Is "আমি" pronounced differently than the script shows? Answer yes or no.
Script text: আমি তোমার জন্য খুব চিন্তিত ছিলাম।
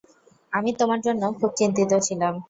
no